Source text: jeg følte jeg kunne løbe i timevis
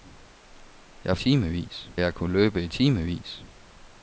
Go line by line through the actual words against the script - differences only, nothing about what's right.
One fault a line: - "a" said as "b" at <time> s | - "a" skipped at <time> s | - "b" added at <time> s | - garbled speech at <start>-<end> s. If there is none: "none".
- "følte" said as "timevis" at 1.1 s